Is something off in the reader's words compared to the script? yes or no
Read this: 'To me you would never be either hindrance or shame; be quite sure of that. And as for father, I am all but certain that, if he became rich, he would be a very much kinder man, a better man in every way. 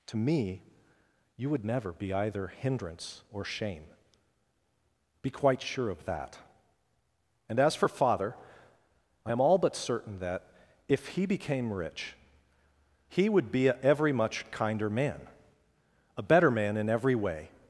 yes